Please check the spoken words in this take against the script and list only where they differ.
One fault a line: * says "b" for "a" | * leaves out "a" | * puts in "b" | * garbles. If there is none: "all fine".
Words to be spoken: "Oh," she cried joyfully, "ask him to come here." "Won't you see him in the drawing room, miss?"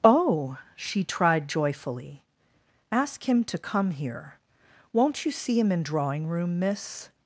* says "tried" for "cried"
* leaves out "the"